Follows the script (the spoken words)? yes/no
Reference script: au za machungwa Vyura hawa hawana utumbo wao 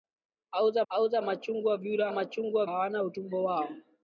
no